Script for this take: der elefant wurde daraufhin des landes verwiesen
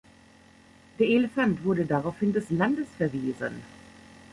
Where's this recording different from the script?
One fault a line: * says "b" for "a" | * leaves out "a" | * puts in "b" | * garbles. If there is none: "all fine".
all fine